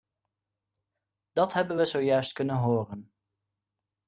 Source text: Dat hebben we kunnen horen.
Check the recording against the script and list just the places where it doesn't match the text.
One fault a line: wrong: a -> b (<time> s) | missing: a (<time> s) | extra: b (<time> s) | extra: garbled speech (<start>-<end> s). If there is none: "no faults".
extra: zojuist (1.8 s)